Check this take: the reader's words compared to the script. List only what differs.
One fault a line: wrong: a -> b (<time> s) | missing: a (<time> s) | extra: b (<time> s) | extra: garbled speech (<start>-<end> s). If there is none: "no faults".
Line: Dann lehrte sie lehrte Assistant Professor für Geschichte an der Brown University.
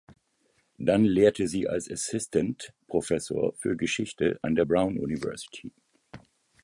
wrong: lehrte -> als (1.7 s)